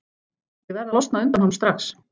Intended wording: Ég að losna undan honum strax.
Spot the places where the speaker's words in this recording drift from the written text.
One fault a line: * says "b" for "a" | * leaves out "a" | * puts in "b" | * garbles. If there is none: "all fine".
* puts in "verð"